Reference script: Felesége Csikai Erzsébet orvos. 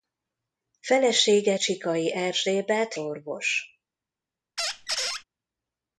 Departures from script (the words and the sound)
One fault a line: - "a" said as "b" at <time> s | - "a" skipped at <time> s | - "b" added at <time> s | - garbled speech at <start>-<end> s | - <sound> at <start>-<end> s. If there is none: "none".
- squeak at 4.6-5.2 s